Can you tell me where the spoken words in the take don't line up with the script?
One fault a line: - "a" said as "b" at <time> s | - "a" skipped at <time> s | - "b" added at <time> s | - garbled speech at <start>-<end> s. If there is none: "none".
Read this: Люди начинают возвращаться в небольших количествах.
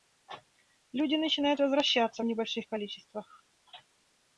none